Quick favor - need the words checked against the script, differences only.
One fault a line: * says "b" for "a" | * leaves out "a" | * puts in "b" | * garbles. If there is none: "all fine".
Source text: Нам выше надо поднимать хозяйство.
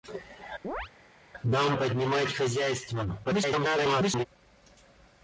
* leaves out "выше надо"
* garbles